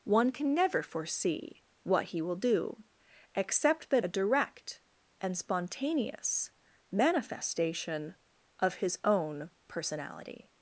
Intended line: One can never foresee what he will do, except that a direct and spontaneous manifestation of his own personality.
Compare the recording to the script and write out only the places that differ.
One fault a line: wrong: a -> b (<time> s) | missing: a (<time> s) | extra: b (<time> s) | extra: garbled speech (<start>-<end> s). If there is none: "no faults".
no faults